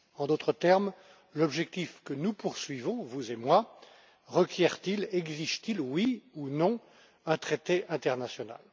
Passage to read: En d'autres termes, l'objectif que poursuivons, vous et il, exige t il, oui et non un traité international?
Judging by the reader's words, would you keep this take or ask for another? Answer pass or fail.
fail